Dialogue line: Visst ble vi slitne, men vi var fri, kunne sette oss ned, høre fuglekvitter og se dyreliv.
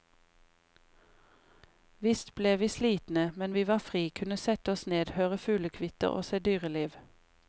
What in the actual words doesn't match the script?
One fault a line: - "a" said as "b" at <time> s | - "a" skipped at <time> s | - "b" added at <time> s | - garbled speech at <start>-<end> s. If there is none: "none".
none